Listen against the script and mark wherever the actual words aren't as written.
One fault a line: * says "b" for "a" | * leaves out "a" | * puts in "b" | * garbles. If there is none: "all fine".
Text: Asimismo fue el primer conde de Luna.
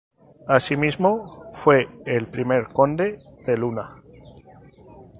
all fine